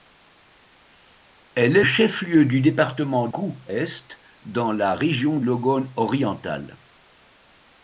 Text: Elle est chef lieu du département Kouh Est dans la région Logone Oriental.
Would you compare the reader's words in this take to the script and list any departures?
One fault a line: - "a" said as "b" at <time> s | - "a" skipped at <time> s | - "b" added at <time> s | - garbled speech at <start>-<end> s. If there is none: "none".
none